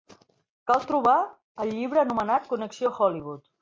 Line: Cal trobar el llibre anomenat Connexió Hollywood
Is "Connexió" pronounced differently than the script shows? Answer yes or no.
no